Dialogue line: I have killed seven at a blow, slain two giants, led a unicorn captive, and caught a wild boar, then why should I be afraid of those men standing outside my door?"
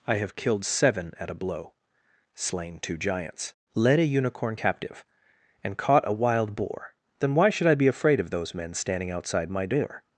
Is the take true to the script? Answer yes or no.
yes